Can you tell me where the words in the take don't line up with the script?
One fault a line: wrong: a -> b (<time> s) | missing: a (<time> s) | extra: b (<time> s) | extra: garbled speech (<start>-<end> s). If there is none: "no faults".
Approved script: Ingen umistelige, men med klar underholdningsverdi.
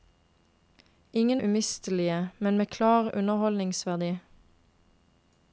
no faults